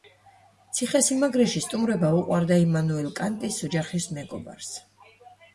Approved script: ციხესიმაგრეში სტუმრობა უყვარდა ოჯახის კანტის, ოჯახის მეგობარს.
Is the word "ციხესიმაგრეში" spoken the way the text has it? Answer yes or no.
yes